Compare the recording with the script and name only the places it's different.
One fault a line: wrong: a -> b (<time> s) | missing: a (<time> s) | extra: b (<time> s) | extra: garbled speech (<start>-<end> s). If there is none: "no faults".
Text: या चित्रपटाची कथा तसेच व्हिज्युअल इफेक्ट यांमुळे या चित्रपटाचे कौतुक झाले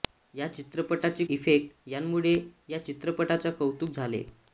missing: कथा तसेच व्हिज्युअल (1.2 s)